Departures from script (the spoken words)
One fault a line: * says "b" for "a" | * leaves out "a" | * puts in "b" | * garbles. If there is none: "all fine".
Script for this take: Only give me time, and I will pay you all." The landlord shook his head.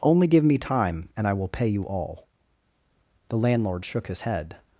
all fine